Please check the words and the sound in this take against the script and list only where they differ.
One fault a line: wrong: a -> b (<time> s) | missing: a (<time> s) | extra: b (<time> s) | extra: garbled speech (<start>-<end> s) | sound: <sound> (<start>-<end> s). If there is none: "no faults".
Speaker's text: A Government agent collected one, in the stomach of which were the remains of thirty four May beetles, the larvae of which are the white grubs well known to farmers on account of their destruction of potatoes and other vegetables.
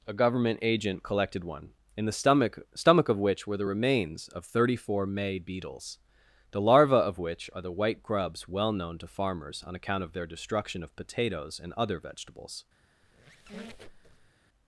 extra: stomach (2.7 s)
sound: squeak (13.0-14.3 s)